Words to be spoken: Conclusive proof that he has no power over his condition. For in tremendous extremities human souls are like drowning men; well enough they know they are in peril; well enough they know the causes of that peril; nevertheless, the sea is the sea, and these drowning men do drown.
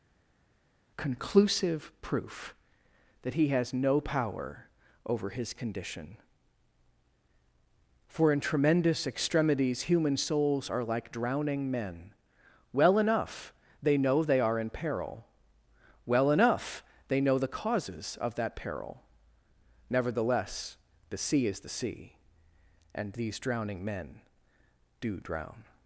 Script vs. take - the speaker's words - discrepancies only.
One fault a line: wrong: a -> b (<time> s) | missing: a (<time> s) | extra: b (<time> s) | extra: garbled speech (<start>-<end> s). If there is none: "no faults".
no faults